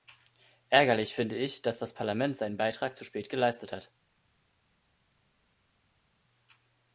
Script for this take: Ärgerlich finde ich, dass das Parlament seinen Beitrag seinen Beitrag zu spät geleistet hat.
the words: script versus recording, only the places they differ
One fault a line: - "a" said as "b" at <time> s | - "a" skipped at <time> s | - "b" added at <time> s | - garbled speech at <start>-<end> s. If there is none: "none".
- "seinen Beitrag" skipped at 3.0 s